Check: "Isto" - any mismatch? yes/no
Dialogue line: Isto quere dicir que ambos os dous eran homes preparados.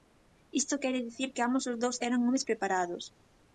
no